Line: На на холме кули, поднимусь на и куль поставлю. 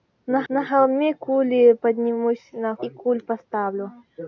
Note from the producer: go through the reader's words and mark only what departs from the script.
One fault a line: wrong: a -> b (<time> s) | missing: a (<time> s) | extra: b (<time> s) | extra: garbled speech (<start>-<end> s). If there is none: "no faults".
no faults